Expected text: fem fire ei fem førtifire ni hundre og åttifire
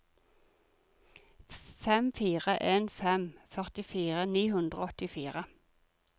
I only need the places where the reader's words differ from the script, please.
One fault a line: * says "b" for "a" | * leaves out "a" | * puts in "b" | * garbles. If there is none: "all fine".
* says "en" for "ei"